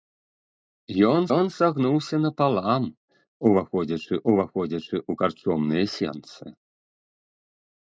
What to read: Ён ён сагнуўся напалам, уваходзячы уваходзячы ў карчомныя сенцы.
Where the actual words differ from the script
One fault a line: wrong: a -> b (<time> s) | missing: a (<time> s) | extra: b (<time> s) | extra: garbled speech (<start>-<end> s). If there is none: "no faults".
no faults